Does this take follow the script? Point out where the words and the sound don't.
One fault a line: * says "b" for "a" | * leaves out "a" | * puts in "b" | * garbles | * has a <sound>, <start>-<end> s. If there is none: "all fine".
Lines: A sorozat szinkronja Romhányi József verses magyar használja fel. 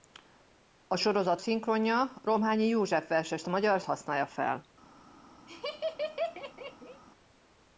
* has a laugh, 5.5-7.0 s